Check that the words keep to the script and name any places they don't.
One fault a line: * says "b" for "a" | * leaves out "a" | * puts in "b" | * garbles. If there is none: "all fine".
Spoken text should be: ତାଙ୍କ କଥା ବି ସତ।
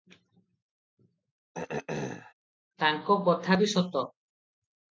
all fine